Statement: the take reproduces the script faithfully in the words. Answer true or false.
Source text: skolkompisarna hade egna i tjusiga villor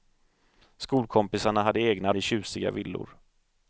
true